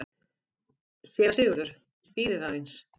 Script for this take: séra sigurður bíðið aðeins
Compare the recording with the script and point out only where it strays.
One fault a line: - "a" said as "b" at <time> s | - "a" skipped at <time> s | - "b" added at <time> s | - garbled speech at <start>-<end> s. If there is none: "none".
none